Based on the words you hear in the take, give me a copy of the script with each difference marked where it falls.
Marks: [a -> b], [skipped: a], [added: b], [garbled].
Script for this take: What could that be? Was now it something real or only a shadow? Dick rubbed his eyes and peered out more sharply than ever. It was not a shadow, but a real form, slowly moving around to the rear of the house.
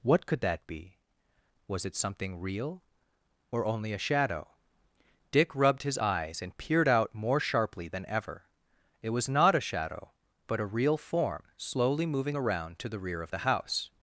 What could that be? Was [skipped: now] it something real or only a shadow? Dick rubbed his eyes and peered out more sharply than ever. It was not a shadow, but a real form, slowly moving around to the rear of the house.